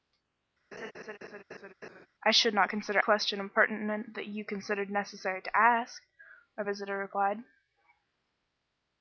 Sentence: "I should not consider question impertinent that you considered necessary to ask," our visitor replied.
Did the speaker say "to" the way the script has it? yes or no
yes